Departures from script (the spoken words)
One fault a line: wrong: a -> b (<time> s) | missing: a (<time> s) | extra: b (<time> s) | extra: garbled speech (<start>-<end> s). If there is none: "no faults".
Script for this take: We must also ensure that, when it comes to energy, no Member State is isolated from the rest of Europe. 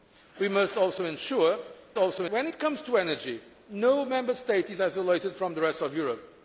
wrong: that -> also (2.0 s)